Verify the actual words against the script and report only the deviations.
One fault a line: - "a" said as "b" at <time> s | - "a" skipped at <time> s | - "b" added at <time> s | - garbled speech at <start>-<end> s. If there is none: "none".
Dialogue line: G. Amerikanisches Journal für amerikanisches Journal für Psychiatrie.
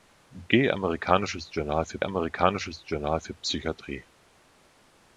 none